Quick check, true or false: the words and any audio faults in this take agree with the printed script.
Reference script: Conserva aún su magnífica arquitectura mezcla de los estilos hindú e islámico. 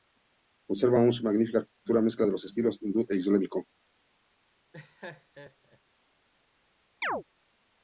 false